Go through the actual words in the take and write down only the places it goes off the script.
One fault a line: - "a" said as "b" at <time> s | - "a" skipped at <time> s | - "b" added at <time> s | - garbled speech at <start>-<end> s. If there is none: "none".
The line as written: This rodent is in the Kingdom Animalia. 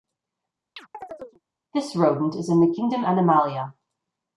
none